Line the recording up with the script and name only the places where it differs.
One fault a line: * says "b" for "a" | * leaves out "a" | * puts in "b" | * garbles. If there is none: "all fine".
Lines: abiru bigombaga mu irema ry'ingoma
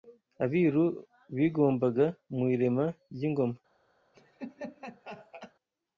all fine